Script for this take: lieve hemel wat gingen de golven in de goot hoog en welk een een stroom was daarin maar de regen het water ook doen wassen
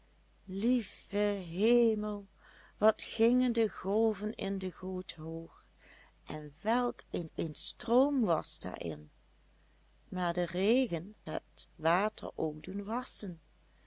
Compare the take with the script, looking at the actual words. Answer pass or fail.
pass